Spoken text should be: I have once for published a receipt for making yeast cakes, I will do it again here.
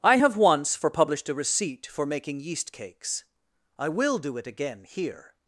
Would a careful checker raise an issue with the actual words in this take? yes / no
no